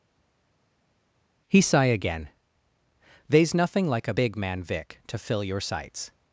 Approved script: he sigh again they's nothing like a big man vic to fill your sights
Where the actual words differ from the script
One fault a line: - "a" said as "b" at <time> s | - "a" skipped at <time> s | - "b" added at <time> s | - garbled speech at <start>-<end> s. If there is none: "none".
none